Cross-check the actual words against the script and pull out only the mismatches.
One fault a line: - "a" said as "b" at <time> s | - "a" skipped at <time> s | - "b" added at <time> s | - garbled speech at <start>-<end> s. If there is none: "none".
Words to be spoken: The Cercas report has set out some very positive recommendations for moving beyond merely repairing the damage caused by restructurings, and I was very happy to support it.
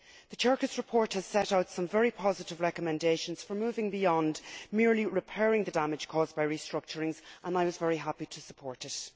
none